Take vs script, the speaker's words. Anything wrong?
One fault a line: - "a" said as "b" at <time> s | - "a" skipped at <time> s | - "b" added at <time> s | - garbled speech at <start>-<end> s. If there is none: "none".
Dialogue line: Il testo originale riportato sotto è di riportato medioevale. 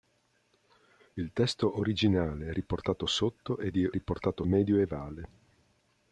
none